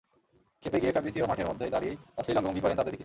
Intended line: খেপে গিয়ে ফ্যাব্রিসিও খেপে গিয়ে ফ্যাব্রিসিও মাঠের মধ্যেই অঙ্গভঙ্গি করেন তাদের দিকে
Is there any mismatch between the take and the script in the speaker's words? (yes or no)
yes